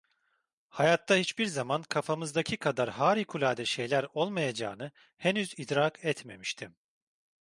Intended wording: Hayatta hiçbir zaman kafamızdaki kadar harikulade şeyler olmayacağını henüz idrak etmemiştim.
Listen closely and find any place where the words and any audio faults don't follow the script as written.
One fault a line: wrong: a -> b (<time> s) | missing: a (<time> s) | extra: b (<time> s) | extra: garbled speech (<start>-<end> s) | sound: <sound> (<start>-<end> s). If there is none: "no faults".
no faults